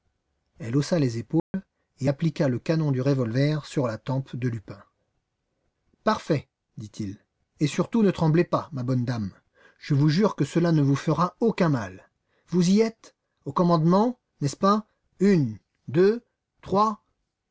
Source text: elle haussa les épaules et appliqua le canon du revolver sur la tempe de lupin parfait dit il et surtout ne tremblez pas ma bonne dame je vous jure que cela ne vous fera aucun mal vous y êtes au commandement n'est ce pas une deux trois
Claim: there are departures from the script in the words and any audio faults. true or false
true